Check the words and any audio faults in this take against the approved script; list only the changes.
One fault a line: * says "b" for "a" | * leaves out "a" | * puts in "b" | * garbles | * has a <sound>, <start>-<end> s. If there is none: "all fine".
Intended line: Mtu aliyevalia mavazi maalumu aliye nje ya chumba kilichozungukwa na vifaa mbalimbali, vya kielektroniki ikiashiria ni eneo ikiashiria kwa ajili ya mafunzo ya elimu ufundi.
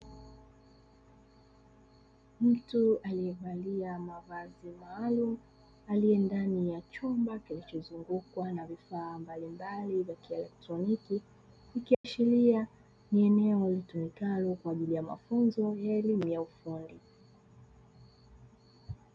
* says "ndani" for "nje"
* has a dropout, 11.9-12.0 s
* says "litumikalo" for "ikiashiria"
* puts in "ya"